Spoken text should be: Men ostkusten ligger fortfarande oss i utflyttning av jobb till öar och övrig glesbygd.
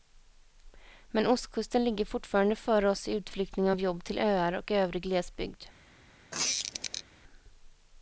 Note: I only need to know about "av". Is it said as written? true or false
true